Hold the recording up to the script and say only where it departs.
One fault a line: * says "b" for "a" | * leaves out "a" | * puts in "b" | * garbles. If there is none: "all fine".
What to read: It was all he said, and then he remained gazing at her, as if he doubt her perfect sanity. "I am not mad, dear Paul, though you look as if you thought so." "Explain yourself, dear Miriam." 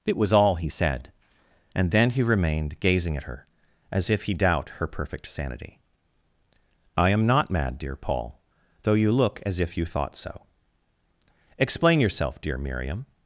all fine